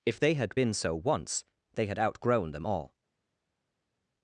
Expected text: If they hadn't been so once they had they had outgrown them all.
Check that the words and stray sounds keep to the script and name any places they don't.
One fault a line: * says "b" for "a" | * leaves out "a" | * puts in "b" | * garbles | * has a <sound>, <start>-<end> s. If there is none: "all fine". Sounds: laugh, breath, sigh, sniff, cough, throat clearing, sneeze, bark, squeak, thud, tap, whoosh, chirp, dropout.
* says "had" for "hadn't"
* leaves out "they had"